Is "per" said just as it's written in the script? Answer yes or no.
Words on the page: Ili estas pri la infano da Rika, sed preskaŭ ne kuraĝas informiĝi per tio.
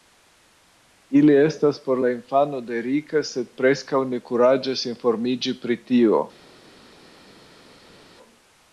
no